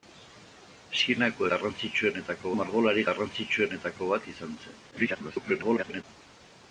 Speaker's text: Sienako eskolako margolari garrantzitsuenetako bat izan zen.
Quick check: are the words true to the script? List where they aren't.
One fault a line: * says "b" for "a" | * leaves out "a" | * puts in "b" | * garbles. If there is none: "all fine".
* says "garrantzitsuenetako" for "eskolako"
* garbles